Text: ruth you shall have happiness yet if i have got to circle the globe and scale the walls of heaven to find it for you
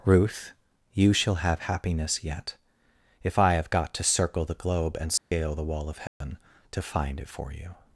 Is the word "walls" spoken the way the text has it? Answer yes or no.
no